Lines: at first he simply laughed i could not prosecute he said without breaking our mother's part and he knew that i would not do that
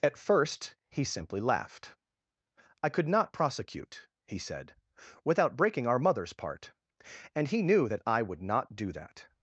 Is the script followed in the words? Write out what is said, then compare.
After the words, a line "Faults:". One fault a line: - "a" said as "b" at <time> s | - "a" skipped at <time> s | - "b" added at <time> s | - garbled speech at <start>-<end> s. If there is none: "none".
at first he simply laughed i could not prosecute he said without breaking our mother's part and he knew that i would not do that
Faults:
none